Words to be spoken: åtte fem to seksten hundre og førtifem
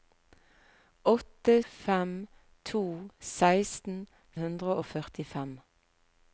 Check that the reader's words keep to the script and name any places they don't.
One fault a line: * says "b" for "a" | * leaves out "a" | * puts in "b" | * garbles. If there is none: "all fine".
all fine